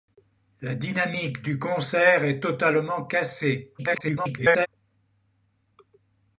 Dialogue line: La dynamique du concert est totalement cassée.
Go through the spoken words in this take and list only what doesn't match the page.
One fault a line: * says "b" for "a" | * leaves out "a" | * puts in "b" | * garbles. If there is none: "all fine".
* garbles